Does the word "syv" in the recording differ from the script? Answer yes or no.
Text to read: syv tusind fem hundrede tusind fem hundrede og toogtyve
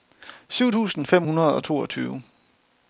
no